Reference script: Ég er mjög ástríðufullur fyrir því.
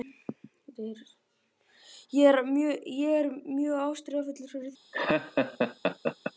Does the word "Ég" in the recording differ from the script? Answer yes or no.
no